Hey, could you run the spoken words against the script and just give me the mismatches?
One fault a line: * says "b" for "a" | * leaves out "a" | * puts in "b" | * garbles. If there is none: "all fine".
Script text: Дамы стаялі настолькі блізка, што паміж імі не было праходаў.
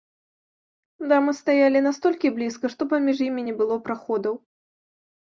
all fine